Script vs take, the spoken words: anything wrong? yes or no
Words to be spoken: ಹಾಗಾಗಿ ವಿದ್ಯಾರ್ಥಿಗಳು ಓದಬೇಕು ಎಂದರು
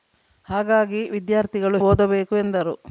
no